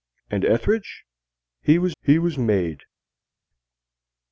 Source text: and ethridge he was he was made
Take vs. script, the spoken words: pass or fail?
pass